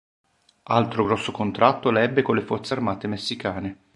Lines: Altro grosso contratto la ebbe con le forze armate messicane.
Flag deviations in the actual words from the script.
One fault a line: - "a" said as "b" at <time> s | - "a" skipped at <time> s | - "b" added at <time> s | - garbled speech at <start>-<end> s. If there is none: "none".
none